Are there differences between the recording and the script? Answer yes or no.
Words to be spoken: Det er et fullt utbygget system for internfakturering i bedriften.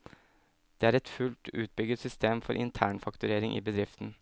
no